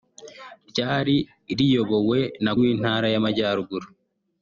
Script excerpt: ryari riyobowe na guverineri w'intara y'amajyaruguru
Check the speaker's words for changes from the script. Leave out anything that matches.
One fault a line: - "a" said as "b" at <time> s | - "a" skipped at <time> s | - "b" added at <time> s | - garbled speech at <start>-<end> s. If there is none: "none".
- "guverineri" skipped at 2.5 s